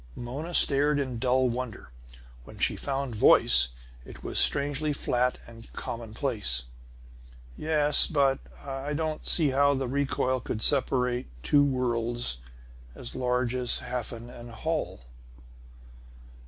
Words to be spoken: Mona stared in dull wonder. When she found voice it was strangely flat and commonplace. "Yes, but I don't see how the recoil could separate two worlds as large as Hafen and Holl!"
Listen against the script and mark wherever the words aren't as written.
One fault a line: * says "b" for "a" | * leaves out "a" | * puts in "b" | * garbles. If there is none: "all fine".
all fine